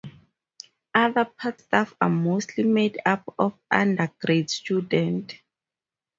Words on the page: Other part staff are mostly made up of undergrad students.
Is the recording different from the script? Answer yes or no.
no